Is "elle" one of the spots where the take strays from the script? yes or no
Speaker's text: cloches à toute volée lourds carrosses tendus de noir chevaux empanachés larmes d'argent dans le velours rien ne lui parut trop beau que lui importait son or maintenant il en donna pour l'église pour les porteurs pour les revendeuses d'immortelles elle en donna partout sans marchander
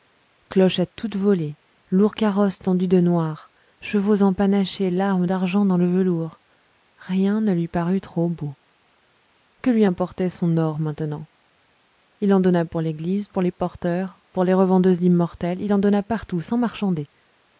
yes